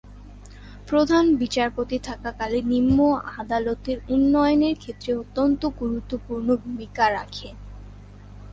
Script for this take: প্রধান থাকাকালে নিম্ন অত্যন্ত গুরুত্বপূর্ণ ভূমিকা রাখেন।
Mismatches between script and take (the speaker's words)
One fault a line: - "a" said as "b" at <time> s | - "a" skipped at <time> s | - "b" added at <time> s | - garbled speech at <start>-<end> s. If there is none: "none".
- "বিচারপতি" added at 1.4 s
- "আদালতের উন্নয়নের ক্ষেত্রে" added at 3.4 s